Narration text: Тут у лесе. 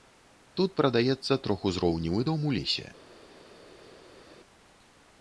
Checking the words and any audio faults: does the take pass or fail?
fail